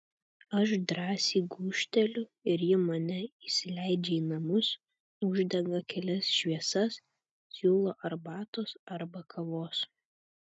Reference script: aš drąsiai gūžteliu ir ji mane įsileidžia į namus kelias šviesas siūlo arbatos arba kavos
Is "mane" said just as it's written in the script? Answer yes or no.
yes